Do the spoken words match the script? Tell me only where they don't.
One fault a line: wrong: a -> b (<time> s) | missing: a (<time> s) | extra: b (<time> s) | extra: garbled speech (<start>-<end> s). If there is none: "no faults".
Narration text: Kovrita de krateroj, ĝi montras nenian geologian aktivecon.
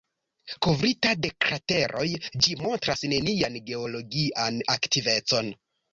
no faults